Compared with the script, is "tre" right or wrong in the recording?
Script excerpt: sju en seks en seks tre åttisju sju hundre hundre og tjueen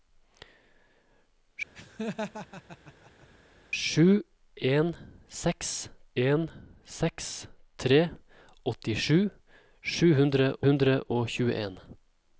right